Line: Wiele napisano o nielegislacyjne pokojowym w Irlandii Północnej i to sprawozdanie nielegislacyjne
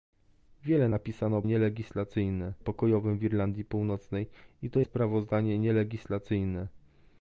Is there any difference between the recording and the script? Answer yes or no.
no